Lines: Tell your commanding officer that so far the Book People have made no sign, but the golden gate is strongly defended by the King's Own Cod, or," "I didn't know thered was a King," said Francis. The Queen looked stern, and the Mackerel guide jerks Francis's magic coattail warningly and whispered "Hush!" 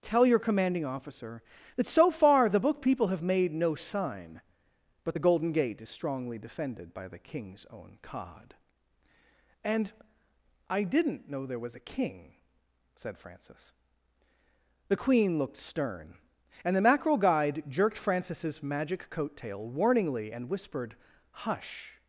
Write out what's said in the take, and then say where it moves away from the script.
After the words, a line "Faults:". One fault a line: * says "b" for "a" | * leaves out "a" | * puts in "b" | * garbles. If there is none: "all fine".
Tell your commanding officer that so far the Book People have made no sign, but the golden gate is strongly defended by the King's Own Cod, and," "I didn't know there was a King," said Francis. The Queen looked stern, and the Mackerel guide jerked Francis's magic coattail warningly and whispered "Hush!"
Faults:
* says "and" for "or"
* says "there" for "thered"
* says "jerked" for "jerks"